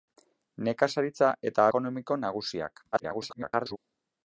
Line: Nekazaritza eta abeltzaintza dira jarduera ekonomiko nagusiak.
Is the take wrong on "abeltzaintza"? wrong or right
wrong